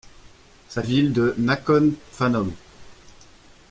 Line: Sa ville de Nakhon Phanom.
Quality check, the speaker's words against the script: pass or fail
pass